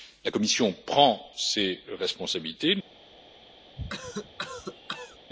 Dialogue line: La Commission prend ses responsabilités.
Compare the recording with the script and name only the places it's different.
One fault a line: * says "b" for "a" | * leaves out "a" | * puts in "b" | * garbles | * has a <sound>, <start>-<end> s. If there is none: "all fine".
* has a cough, 3.8-5.2 s